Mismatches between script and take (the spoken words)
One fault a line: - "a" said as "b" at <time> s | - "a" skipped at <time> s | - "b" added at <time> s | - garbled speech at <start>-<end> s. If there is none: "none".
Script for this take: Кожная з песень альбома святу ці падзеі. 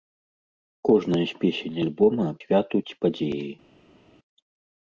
none